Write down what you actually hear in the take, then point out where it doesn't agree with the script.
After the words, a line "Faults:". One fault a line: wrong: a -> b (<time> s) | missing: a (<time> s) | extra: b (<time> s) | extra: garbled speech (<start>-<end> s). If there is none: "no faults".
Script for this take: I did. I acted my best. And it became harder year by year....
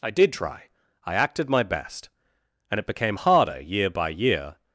I did try. I acted my best. And it became harder year by year....
Faults:
extra: try (0.3 s)